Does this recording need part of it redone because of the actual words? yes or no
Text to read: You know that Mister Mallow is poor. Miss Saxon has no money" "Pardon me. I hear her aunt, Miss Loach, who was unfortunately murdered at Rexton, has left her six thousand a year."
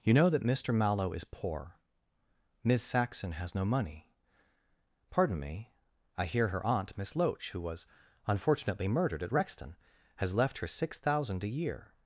no